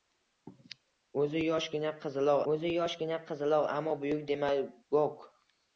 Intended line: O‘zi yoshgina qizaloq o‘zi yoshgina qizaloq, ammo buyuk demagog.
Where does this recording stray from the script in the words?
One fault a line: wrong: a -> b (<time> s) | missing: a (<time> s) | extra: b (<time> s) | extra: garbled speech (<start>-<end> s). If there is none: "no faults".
no faults